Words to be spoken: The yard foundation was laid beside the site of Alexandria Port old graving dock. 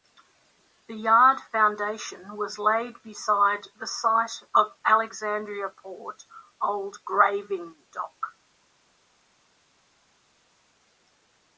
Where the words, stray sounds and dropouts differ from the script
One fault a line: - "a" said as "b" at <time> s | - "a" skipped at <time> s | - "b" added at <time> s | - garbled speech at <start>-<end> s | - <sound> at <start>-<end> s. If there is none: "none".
none